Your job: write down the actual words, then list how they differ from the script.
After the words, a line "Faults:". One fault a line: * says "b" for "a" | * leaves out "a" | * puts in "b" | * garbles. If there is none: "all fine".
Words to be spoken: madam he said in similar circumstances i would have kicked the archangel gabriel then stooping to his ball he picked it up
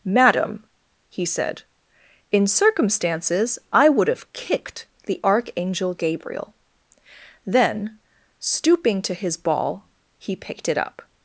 madam he said in circumstances i would have kicked the archangel gabriel then stooping to his ball he picked it up
Faults:
* leaves out "similar"